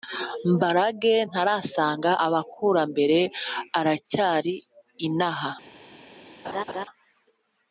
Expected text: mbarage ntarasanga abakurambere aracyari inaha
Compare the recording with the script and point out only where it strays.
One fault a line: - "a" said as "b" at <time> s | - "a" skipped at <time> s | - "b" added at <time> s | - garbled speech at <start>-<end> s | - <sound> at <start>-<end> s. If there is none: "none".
- laugh at 6.4-6.9 s